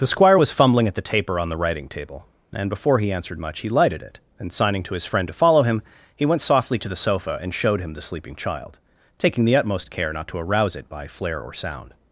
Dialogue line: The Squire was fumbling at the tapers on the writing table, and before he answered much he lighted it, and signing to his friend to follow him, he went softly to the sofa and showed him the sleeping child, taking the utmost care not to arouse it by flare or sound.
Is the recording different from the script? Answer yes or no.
yes